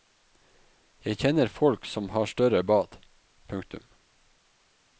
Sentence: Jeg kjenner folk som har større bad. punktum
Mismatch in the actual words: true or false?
false